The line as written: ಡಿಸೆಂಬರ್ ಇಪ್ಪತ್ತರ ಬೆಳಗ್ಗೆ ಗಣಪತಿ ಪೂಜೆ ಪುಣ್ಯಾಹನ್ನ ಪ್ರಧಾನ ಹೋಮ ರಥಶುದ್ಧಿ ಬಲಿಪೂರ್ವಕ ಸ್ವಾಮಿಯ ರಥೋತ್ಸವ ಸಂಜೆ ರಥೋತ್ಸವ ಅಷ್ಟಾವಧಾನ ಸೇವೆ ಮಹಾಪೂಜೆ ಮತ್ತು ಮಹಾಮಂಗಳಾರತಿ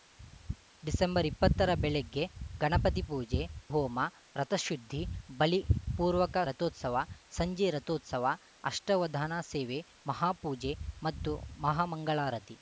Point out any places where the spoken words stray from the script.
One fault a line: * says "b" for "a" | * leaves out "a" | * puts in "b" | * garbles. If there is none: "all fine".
* leaves out "ಪುಣ್ಯಾಹನ್ನ ಪ್ರಧಾನ"
* leaves out "ಸ್ವಾಮಿಯ"